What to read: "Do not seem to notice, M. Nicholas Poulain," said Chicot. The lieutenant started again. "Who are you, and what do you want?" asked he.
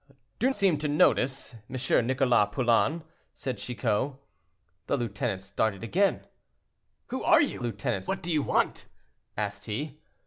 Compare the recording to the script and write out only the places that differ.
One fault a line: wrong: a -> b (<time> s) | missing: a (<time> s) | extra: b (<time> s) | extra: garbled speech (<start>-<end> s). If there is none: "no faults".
missing: not (0.5 s)
wrong: and -> lieutenant (7.6 s)